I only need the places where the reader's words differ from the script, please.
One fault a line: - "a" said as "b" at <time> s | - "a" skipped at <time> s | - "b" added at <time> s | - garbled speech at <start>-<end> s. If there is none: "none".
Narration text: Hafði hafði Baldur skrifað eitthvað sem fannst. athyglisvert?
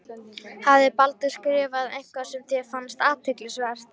- "hafði" skipped at 0.9 s
- "þér" added at 2.5 s